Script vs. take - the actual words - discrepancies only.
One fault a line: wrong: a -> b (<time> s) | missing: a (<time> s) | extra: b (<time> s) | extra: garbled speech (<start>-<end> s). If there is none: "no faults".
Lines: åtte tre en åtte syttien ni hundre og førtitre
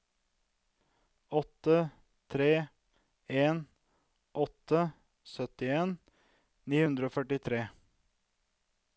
no faults